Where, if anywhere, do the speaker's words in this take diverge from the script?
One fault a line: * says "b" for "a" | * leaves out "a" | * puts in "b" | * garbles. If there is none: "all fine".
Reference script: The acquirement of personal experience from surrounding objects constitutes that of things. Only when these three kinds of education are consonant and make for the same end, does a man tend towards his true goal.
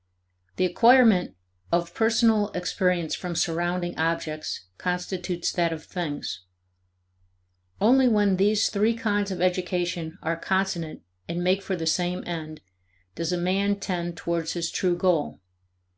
all fine